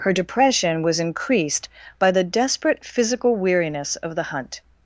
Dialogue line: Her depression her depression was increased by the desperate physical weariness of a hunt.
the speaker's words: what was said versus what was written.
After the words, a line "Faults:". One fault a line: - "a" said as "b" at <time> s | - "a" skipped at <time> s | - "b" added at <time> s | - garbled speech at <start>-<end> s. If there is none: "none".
Her depression was increased by the desperate physical weariness of the hunt.
Faults:
- "her depression" skipped at 0.8 s
- "a" said as "the" at 4.2 s